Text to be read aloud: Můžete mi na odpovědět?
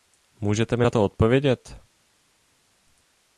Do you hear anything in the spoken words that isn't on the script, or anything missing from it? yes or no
yes